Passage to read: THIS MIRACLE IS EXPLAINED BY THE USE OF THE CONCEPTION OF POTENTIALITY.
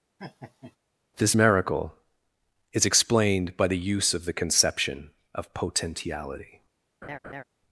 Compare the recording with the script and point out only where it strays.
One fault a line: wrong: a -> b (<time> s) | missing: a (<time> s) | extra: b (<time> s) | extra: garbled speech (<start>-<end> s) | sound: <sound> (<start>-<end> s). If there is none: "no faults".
sound: laugh (0.2-0.8 s)
sound: laugh (7.0-7.4 s)